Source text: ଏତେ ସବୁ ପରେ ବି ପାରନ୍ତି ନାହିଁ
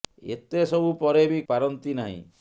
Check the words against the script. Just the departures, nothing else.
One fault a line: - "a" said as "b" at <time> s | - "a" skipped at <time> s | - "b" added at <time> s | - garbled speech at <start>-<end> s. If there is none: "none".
none